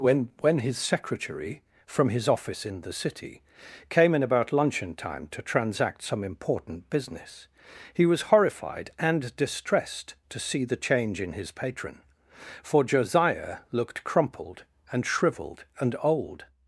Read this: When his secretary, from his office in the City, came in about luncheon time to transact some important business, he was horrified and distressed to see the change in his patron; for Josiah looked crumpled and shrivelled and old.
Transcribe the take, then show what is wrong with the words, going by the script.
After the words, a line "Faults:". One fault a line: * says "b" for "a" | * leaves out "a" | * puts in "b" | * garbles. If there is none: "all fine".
When when his secretary, from his office in the City, came in about luncheon time to transact some important business, he was horrified and distressed to see the change in his patron; for Josiah looked crumpled and shrivelled and old.
Faults:
* puts in "when"